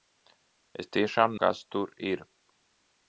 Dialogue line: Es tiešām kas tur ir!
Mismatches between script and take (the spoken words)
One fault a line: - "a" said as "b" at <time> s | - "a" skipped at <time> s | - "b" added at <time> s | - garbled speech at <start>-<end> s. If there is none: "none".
none